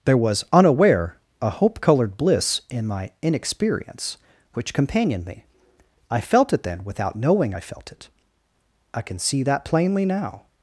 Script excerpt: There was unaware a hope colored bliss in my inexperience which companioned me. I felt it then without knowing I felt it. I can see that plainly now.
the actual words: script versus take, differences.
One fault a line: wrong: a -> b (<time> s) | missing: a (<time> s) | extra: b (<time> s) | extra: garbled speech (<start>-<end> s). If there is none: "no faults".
no faults